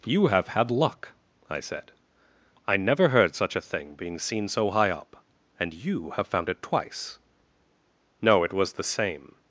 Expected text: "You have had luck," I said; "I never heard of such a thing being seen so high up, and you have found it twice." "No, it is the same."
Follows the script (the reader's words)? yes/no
no